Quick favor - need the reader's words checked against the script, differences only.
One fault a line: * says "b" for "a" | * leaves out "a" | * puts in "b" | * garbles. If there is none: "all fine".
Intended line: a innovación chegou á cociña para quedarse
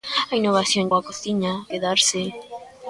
* leaves out "chegou"
* leaves out "para"